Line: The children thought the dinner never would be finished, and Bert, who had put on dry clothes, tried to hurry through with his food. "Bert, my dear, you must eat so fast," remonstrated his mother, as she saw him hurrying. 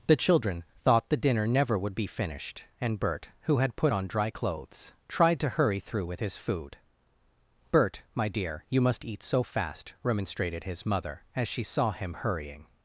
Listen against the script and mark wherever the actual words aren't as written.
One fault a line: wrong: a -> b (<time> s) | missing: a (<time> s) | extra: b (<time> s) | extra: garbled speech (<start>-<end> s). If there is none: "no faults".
no faults